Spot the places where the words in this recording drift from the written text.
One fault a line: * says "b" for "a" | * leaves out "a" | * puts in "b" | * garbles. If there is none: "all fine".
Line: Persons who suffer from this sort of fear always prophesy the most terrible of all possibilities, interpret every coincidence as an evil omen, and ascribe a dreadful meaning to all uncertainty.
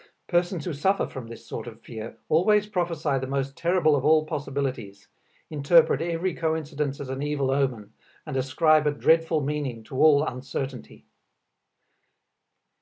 all fine